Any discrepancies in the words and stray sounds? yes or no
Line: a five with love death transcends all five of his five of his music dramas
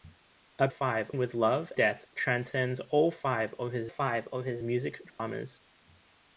yes